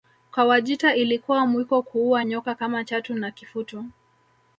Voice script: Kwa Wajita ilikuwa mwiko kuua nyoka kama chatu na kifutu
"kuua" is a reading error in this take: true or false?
false